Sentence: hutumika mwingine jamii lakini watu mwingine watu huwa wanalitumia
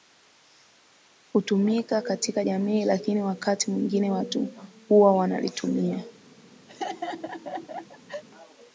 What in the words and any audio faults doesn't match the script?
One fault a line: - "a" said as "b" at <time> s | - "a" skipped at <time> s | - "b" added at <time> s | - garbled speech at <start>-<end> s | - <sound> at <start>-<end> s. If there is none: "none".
- "mwingine" said as "katika" at 2.0 s
- "watu" said as "wakati" at 3.2 s
- laugh at 6.7-8.2 s